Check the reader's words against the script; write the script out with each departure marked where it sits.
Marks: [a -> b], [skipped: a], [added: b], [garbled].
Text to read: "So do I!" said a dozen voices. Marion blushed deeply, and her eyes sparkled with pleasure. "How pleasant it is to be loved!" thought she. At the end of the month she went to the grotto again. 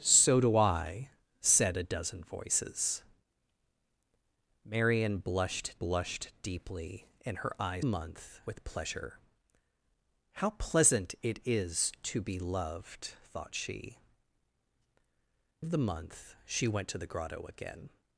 "So do I!" said a dozen voices. Marion blushed [added: blushed] deeply, and her eyes [sparkled -> month] with pleasure. "How pleasant it is to be loved!" thought she. [skipped: At the end] of the month she went to the grotto again.